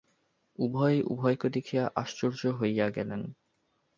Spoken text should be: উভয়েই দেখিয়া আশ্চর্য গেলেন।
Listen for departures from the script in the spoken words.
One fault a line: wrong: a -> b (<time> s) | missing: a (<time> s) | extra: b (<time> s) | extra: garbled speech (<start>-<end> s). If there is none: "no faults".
extra: উভয়কে (1.0 s)
extra: হইয়া (2.6 s)